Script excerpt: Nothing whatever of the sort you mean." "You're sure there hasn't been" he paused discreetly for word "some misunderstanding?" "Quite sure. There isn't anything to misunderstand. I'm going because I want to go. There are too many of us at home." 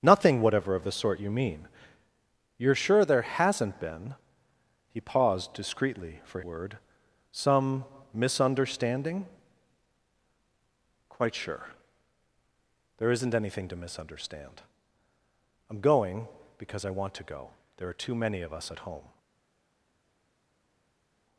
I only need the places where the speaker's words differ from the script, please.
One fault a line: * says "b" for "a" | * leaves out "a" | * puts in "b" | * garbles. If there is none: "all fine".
all fine